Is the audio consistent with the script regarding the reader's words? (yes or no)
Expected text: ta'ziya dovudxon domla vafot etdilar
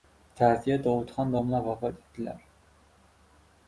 yes